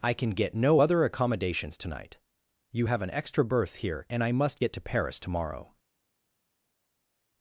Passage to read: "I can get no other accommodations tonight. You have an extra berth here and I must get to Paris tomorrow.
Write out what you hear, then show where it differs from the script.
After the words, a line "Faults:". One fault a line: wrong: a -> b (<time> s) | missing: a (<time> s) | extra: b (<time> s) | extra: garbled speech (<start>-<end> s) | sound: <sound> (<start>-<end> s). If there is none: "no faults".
"I can get no other accommodations tonight. You have an extra berth here and I must get to Paris tomorrow.
Faults:
no faults